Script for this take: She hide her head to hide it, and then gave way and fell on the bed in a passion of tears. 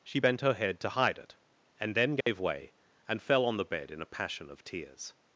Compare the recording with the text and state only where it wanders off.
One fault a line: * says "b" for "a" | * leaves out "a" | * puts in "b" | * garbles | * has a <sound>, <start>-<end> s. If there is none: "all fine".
* says "bent" for "hide"
* has a dropout, 2.2-2.3 s